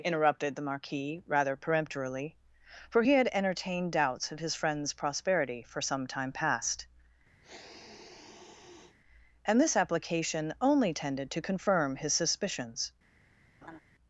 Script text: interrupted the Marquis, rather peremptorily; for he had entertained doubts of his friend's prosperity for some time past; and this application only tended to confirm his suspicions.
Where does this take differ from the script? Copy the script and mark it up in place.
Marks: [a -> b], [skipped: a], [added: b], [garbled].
interrupted the Marquis, rather peremptorily; for he had entertained doubts of his friend's prosperity for some time past; and this application only tended to confirm his suspicions.